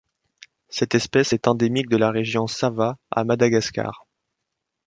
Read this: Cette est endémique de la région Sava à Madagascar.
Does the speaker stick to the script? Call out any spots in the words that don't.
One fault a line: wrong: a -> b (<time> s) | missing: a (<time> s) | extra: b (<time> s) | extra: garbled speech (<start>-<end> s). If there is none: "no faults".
extra: espèce (0.9 s)